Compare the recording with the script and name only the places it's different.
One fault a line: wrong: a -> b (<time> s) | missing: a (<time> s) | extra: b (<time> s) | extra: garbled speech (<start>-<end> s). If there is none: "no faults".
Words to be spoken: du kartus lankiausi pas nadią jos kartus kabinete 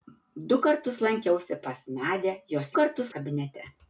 no faults